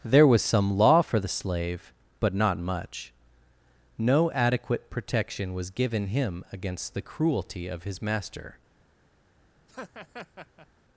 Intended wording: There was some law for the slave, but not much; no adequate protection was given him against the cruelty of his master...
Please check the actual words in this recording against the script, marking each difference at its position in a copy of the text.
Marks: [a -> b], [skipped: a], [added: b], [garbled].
There was some law for the slave, but not much; no adequate protection was given him against the cruelty of his master...